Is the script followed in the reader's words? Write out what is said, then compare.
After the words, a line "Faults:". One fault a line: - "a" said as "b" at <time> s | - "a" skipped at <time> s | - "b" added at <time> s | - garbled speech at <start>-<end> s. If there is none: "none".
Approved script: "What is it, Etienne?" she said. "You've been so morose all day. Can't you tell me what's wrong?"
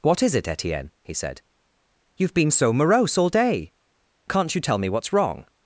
"What is it, Etienne?" he said. "You've been so morose all day. Can't you tell me what's wrong?"
Faults:
- "she" said as "he" at 1.0 s